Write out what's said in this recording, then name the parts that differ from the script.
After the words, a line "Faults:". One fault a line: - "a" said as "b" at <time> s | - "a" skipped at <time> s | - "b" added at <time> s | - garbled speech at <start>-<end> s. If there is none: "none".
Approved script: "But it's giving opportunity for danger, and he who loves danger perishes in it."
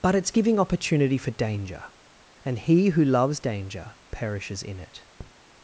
"But it's giving opportunity for danger, and he who loves danger perishes in it."
Faults:
none